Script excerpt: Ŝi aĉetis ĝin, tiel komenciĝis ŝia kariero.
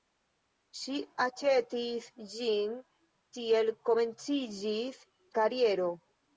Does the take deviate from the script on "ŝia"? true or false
true